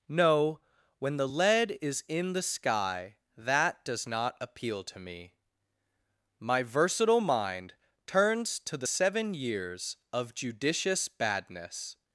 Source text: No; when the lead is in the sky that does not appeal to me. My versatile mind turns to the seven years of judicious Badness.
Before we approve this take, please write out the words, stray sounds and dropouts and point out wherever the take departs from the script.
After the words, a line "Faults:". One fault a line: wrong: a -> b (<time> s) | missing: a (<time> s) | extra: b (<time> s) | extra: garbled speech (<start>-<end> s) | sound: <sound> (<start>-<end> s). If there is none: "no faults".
No; when the lead is in the sky that does not appeal to me. My versatile mind turns to the seven years of judicious Badness.
Faults:
no faults